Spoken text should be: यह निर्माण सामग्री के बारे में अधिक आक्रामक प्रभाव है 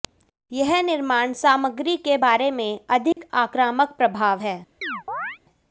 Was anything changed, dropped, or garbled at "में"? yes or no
no